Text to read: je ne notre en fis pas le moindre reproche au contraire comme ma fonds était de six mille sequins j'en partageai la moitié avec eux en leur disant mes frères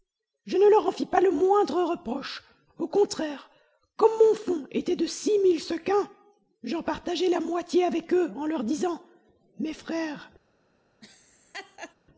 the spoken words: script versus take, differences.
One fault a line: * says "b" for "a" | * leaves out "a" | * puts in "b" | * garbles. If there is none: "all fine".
* says "leur" for "notre"
* says "mon" for "ma"